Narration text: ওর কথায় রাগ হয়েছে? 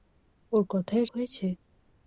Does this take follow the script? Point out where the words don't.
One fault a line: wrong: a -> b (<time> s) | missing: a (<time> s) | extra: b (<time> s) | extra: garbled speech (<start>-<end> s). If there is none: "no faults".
missing: রাগ (1.1 s)